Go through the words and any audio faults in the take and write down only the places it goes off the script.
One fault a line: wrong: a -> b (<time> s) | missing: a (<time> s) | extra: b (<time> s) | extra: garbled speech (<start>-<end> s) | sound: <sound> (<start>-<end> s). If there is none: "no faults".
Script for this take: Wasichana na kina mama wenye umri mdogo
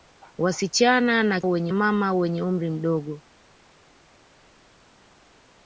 wrong: kina -> wenye (1.4 s)